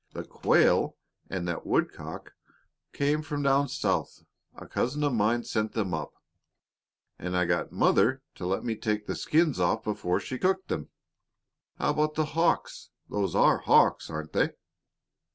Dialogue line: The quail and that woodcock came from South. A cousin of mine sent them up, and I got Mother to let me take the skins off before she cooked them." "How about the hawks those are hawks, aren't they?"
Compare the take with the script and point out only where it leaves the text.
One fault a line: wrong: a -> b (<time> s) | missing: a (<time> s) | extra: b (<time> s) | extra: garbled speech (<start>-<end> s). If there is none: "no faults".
extra: down (3.4 s)